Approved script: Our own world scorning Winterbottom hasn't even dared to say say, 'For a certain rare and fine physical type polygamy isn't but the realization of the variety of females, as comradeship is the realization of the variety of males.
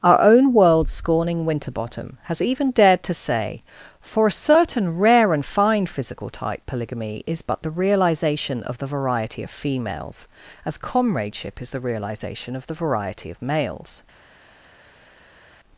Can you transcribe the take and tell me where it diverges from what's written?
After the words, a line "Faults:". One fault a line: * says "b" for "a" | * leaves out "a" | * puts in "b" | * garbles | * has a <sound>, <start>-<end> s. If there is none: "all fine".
Our own world scorning Winterbottom has even dared to say, 'For a certain rare and fine physical type polygamy is but the realization of the variety of females, as comradeship is the realization of the variety of males.
Faults:
* says "has" for "hasn't"
* leaves out "say"
* says "is" for "isn't"